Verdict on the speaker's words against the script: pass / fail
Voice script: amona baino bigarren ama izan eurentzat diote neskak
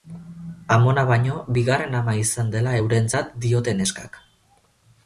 fail